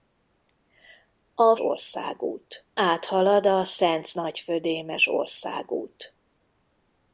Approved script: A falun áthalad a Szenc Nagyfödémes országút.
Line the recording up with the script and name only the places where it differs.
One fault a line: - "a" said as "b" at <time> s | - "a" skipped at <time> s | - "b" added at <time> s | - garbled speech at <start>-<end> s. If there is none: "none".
- "falun" said as "országút" at 1.6 s